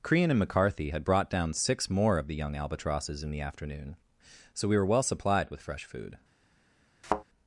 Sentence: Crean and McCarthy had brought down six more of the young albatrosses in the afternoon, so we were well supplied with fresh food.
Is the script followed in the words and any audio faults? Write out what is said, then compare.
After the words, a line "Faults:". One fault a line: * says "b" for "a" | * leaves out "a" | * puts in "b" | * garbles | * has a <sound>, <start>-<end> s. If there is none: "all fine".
Crean and McCarthy had brought down six more of the young albatrosses in the afternoon, so we were well supplied with fresh food.
Faults:
* has a thud, 7.0-7.2 s